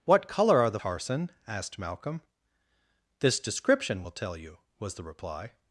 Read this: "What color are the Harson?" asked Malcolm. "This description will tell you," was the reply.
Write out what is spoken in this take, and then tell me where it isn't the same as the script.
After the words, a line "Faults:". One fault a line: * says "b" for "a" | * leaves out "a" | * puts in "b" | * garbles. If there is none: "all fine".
"What color are the Harson?" asked Malcolm. "This description will tell you," was the reply.
Faults:
all fine